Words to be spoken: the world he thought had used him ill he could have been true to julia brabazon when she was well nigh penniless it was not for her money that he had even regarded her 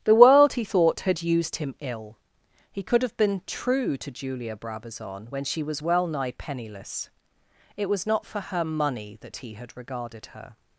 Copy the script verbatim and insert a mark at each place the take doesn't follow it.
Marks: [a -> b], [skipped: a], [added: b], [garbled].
the world he thought had used him ill he could have been true to julia brabazon when she was well nigh penniless it was not for her money that he had [skipped: even] regarded her